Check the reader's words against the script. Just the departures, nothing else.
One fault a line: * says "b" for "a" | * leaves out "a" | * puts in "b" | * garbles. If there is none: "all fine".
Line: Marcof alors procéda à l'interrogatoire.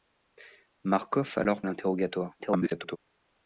* leaves out "procéda"
* garbles